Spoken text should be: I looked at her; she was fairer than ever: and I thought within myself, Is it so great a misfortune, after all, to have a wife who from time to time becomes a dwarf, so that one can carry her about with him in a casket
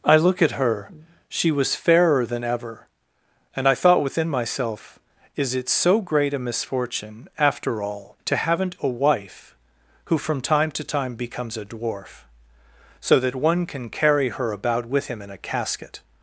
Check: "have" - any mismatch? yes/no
yes